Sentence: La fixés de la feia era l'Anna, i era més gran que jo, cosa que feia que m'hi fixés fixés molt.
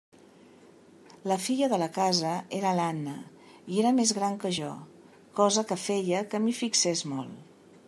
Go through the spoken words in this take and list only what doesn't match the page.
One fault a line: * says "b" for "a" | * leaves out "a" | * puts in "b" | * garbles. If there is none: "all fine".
* says "filla" for "fixés"
* says "casa" for "feia"
* leaves out "fixés"